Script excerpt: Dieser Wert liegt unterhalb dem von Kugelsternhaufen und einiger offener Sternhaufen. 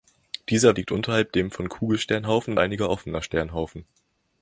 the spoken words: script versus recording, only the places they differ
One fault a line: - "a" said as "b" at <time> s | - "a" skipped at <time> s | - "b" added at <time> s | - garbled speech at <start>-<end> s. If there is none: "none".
- "Wert" skipped at 0.8 s
- "und" skipped at 2.5 s